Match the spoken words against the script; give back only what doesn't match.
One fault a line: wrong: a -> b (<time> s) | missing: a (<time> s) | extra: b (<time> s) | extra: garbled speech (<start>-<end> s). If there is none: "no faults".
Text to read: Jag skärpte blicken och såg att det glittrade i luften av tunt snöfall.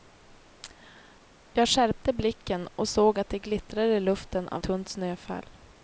no faults